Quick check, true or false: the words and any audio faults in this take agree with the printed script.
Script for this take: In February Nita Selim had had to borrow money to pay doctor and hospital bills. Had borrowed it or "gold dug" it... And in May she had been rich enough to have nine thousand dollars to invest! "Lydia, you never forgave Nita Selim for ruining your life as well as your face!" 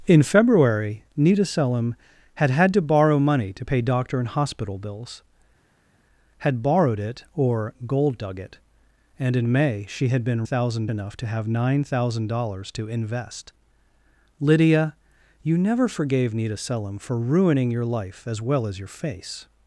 false